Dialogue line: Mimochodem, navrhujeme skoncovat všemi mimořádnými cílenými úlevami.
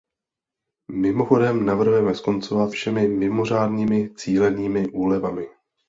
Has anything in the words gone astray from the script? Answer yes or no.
no